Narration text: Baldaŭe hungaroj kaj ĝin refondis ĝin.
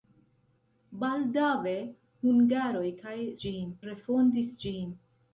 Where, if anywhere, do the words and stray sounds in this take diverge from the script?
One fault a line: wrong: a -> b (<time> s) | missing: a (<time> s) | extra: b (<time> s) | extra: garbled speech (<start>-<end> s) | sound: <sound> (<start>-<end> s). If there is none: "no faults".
no faults